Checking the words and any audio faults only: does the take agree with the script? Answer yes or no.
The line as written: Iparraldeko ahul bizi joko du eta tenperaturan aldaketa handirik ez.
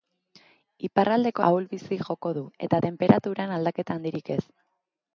yes